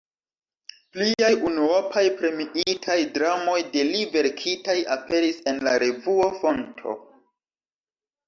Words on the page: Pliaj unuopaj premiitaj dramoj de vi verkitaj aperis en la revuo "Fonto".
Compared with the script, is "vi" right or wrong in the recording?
wrong